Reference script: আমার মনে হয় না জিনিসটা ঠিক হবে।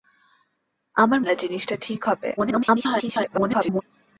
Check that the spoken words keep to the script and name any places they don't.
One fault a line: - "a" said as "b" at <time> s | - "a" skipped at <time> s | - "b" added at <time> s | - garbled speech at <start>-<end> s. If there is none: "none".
- "মনে হয়" skipped at 1.2 s
- garbled speech at 2.4-3.8 s